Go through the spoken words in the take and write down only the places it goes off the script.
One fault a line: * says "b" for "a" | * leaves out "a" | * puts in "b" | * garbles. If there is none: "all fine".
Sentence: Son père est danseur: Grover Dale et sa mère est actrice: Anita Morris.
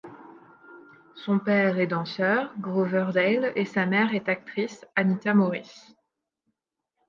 all fine